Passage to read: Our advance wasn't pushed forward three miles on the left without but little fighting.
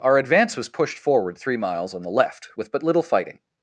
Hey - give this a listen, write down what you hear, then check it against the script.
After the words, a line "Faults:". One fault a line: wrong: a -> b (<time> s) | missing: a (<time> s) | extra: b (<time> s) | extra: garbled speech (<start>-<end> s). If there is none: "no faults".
Our advance was pushed forward three miles on the left with but little fighting.
Faults:
wrong: wasn't -> was (0.6 s)
wrong: without -> with (2.5 s)